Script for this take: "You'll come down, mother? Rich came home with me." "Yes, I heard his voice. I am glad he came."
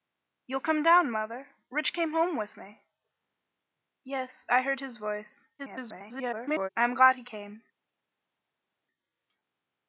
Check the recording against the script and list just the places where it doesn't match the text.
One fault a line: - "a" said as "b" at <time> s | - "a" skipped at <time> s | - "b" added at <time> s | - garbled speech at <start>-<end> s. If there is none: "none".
- garbled speech at 5.6-6.7 s